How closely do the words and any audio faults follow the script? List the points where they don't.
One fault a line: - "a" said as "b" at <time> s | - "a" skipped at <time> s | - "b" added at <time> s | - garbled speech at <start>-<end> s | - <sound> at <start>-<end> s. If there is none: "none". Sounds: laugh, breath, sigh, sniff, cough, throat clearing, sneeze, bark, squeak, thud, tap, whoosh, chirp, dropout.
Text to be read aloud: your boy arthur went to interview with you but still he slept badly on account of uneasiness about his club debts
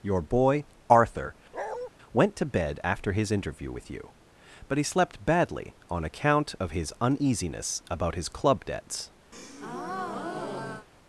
- bark at 1.5-1.9 s
- "bed after his" added at 2.4 s
- "still" skipped at 4.8 s
- "his" added at 6.7 s
- breath at 9.3-10.9 s